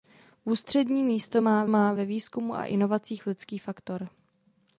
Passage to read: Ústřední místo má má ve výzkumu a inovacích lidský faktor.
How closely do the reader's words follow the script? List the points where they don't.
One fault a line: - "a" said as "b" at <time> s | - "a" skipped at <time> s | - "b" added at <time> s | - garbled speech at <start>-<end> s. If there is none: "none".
none